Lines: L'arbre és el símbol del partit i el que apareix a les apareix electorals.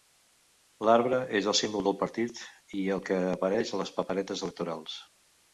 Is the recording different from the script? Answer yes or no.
yes